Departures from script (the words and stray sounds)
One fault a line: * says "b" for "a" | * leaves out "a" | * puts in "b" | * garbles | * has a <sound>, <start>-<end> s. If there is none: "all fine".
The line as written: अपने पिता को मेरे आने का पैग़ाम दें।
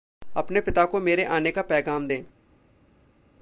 all fine